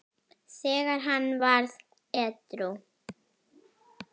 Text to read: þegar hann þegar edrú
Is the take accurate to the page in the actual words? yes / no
no